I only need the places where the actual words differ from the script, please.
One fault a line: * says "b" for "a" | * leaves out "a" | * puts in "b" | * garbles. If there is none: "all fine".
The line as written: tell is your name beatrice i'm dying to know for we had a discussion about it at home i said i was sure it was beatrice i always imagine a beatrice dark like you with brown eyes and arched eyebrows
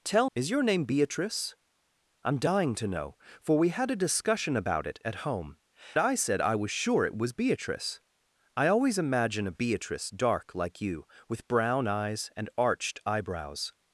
all fine